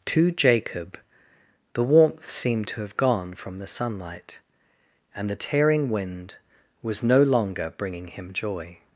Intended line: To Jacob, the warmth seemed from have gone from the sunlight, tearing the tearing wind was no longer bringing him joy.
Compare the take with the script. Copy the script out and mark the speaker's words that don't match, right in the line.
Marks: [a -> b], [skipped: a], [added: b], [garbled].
To Jacob, the warmth seemed [from -> to] have gone from the sunlight, [tearing -> and] the tearing wind was no longer bringing him joy.